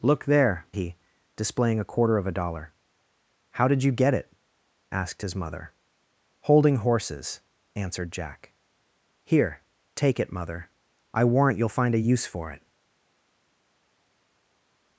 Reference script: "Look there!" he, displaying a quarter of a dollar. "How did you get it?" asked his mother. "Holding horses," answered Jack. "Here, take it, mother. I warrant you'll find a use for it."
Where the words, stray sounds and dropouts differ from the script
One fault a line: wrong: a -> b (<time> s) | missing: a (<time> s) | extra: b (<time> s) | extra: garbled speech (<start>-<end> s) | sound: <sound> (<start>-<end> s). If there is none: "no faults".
no faults